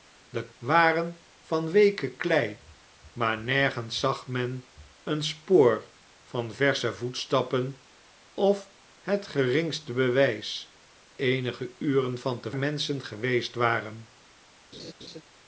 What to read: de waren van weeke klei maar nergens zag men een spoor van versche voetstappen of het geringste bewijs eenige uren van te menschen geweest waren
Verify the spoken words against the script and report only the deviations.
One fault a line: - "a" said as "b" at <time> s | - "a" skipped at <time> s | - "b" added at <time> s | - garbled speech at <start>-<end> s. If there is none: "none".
none